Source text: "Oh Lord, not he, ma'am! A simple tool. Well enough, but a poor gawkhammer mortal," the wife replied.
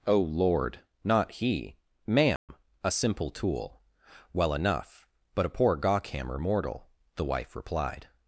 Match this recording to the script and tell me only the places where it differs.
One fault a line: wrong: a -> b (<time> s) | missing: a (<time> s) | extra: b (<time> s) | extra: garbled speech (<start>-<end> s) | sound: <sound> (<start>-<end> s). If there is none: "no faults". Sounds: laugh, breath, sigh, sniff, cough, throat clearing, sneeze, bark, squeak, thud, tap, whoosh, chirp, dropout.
sound: dropout (2.4-2.5 s)